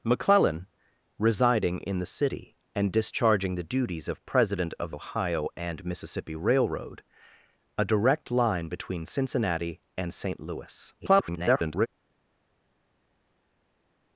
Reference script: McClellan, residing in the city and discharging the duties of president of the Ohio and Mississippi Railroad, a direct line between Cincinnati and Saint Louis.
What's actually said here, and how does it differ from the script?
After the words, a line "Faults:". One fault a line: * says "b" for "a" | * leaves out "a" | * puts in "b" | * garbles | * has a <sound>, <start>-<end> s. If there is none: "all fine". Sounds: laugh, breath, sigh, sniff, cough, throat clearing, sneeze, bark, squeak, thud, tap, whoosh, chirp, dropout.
McClellan, residing in the city and discharging the duties of president of Ohio and Mississippi Railroad, a direct line between Cincinnati and Saint Louis. [garbled]
Faults:
* leaves out "the"
* garbles